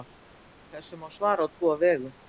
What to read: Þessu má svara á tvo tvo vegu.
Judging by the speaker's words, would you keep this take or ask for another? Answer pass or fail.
fail